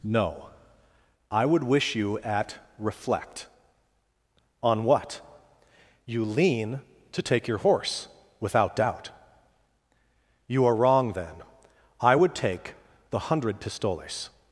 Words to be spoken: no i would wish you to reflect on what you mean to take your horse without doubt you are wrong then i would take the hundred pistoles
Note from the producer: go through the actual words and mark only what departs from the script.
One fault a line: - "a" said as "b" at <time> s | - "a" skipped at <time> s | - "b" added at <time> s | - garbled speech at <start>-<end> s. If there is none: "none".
- "to" said as "at" at 2.2 s
- "mean" said as "lean" at 6.2 s